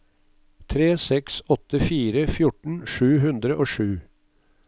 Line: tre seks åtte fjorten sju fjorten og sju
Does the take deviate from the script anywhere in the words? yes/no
yes